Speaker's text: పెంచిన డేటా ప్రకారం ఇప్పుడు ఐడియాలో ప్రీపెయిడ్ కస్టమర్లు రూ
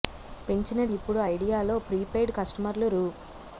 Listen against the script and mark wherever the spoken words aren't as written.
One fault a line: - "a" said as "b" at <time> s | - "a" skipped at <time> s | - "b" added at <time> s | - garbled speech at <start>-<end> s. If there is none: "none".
- "డేటా ప్రకారం" skipped at 0.8 s